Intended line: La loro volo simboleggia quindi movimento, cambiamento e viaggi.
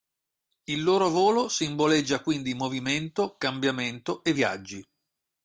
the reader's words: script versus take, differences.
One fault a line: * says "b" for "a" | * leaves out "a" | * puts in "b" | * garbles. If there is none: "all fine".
* says "Il" for "La"